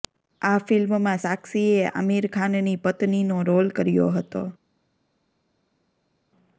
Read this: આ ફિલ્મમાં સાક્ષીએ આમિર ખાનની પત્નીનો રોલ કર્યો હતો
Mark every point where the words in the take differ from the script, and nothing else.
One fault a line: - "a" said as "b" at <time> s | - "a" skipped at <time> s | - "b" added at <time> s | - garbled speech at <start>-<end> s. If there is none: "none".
none